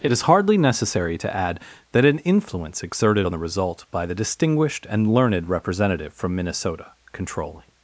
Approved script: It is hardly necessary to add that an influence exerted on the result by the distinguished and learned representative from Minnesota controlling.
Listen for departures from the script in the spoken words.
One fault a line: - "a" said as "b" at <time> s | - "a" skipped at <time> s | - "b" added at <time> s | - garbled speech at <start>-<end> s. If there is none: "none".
none